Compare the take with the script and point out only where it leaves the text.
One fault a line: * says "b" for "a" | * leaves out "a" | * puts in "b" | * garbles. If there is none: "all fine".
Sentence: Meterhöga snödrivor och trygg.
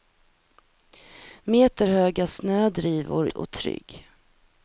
all fine